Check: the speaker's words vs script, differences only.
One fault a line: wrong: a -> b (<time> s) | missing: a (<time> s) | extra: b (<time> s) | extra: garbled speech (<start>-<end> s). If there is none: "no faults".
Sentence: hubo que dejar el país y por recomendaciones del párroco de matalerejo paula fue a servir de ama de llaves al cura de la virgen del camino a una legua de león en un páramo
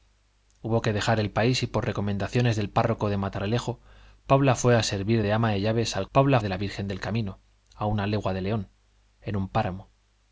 wrong: cura -> paula (6.1 s)